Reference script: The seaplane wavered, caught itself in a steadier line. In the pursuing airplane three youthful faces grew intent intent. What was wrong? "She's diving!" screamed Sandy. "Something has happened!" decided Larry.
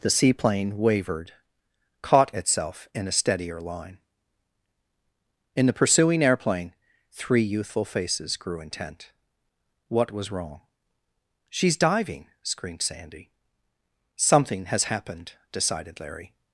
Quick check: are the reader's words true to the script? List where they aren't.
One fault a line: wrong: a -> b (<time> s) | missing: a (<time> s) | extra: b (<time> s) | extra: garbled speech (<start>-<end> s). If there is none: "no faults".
missing: intent (9.1 s)